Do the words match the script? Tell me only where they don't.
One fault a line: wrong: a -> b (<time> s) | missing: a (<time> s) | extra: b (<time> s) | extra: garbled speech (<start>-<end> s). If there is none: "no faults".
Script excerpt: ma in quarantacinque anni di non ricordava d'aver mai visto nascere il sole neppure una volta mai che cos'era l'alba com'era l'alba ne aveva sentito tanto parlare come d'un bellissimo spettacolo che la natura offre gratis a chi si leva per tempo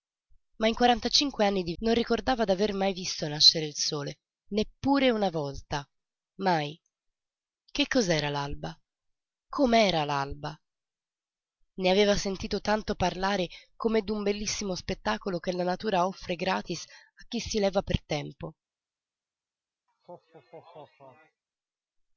no faults